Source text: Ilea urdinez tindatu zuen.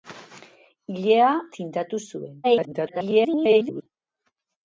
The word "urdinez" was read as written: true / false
false